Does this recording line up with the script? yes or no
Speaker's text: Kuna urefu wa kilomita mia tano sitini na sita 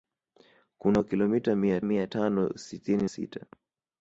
no